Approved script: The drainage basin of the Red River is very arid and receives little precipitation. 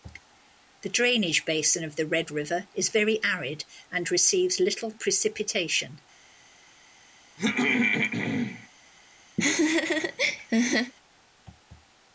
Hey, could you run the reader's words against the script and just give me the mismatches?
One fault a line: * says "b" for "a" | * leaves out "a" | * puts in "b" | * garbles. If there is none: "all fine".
all fine